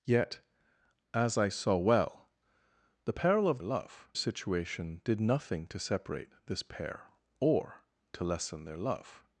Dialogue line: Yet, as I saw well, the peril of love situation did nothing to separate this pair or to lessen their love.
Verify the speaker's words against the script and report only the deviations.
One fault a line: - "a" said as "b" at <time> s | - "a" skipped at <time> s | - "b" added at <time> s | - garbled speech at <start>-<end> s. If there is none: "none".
none